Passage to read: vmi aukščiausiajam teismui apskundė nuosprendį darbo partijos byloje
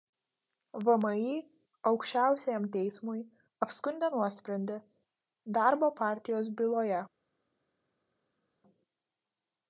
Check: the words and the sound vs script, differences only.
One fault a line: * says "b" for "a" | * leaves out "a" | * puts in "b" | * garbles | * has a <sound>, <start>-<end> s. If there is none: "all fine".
all fine